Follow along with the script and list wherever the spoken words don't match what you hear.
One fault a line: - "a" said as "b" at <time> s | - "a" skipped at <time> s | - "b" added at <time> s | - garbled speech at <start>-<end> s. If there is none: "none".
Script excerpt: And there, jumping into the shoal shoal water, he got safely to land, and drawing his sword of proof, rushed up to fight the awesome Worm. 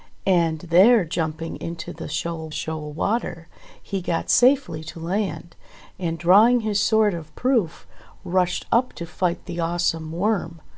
none